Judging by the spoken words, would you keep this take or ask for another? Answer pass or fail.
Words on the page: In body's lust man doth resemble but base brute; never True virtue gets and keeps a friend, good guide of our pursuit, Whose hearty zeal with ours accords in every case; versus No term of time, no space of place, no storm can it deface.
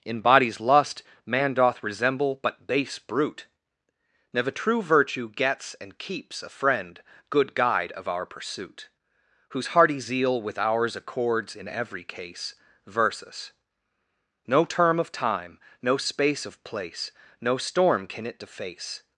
pass